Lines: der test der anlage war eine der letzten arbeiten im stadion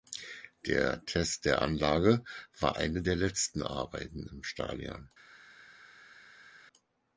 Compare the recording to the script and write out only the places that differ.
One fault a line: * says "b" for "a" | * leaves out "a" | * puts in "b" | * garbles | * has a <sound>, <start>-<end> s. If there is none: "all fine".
all fine